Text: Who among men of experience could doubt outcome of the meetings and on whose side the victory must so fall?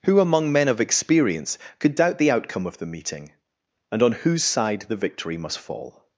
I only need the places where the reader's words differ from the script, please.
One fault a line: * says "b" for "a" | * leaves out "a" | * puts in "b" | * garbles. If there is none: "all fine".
* puts in "the"
* says "meeting" for "meetings"
* leaves out "so"